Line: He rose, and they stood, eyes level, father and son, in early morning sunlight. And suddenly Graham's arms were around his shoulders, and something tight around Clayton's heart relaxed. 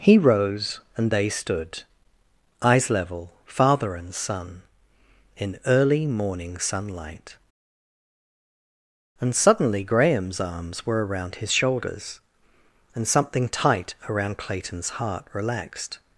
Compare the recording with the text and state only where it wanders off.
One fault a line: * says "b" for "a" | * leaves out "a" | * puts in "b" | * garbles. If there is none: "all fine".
all fine